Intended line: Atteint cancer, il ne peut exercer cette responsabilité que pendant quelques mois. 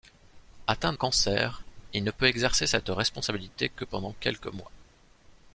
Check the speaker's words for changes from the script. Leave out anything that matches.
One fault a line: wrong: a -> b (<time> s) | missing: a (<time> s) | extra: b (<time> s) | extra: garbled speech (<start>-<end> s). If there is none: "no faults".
no faults